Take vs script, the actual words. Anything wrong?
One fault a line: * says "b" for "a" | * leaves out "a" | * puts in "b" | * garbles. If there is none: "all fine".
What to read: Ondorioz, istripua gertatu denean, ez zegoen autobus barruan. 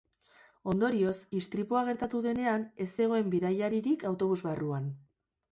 * puts in "bidaiaririk"